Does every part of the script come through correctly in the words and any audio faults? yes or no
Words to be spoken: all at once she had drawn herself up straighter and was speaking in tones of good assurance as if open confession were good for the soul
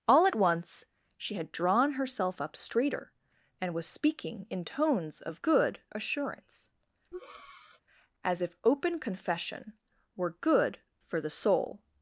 no